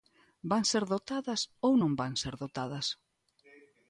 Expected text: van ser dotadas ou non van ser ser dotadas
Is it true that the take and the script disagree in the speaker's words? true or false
true